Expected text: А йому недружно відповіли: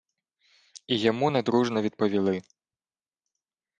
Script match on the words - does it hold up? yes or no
no